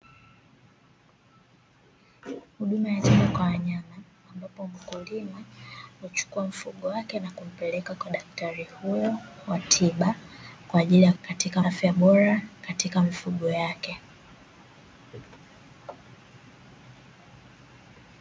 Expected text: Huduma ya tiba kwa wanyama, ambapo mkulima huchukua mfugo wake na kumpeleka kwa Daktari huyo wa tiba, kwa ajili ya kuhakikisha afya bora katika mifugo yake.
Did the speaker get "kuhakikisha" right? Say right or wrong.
wrong